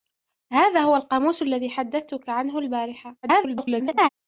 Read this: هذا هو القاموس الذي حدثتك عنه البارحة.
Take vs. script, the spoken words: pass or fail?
fail